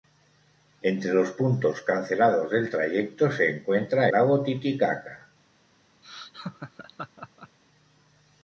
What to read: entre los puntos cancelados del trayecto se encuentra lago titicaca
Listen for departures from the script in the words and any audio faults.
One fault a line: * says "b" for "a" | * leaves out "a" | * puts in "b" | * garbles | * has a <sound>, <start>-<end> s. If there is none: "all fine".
* has a laugh, 6.0-7.6 s